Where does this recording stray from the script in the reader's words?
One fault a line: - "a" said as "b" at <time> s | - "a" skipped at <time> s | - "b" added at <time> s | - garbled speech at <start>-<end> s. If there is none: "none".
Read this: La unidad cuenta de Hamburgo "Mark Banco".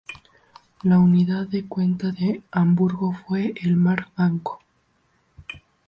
- "de" added at 1.5 s
- "fue el" added at 3.1 s